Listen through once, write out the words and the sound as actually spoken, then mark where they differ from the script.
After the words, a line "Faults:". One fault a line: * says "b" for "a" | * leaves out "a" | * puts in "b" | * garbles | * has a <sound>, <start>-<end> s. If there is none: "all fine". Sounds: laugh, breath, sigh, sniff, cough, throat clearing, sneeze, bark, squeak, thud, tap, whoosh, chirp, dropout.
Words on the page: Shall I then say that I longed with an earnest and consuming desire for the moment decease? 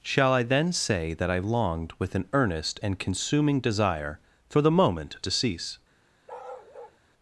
Shall I then say that I longed with an earnest and consuming desire for the moment decease?
Faults:
* has a bark, 6.3-7.0 s